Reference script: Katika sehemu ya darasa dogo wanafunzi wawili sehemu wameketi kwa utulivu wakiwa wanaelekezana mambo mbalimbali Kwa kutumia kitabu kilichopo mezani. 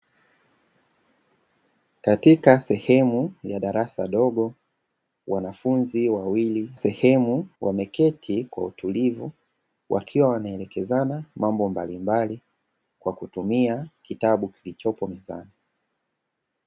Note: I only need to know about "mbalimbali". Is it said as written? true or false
true